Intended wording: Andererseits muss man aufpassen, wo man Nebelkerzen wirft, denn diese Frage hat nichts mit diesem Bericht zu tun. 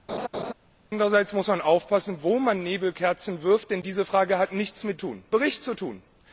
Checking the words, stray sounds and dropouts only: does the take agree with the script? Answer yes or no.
no